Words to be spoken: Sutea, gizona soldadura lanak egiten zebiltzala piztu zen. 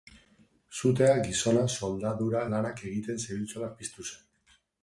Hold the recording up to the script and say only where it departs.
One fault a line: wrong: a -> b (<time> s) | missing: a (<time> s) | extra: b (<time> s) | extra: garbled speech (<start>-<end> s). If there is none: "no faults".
no faults